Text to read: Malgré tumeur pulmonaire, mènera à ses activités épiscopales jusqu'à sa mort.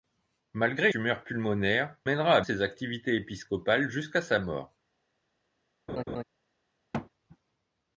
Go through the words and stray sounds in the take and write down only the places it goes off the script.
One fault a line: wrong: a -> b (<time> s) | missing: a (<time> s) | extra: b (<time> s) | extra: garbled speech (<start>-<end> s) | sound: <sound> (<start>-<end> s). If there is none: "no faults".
sound: laugh (5.9-6.2 s)
sound: thud (6.9-7.1 s)